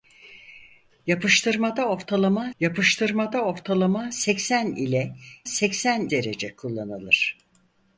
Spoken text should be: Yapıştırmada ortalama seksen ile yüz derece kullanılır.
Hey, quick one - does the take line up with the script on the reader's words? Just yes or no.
no